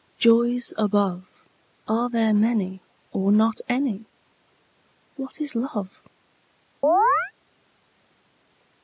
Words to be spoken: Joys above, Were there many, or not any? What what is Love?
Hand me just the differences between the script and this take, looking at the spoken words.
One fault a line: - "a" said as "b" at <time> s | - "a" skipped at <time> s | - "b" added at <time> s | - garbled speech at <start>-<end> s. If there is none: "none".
- "Were" said as "Are" at 1.9 s
- "what" skipped at 5.4 s